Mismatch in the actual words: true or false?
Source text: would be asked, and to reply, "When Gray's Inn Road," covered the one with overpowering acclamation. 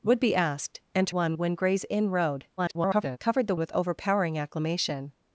true